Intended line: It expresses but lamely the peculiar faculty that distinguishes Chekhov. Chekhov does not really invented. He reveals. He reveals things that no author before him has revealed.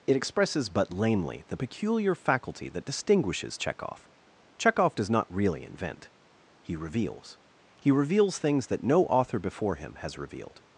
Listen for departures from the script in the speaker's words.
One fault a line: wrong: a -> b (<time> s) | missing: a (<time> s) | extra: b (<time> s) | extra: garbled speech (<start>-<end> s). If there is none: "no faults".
wrong: invented -> invent (5.6 s)